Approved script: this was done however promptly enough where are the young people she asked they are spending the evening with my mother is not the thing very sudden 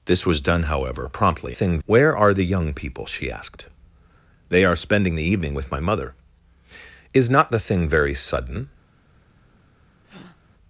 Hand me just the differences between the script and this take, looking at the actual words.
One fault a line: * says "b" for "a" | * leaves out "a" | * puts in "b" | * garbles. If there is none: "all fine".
* says "thing" for "enough"